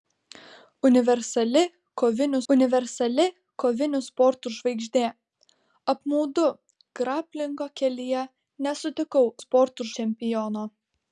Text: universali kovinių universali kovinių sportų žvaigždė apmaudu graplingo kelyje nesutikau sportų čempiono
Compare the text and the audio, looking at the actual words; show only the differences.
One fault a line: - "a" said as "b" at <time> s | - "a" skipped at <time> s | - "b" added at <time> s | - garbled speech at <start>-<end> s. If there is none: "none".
none